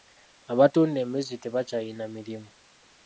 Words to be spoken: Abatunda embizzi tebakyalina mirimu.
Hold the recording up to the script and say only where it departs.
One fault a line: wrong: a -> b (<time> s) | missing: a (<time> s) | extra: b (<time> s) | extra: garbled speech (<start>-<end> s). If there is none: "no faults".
no faults